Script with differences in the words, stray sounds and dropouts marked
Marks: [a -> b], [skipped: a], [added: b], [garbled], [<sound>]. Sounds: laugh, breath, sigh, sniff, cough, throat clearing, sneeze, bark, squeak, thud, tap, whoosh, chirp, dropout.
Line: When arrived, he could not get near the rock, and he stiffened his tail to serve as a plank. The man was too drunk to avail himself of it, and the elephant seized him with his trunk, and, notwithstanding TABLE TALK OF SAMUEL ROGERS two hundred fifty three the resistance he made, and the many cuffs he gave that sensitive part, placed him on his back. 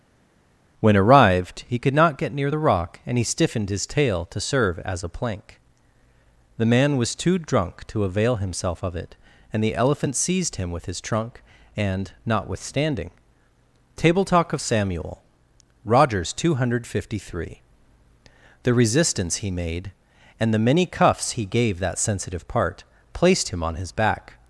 When arrived, he could not get near the rock, and he stiffened his tail to serve as a plank. The man was too drunk to avail himself of it, and the elephant seized him with his trunk, and, notwithstanding TABLE TALK OF SAMUEL ROGERS two hundred fifty three the resistance he made, and the many cuffs he gave that sensitive part, placed him on his back.